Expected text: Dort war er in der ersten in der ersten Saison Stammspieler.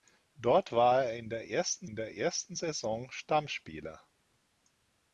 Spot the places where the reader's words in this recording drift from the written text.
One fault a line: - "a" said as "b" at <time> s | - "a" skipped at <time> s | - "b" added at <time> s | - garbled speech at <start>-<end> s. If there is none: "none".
none